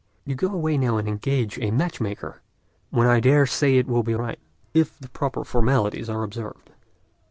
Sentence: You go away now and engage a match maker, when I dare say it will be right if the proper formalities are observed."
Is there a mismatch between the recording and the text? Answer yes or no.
no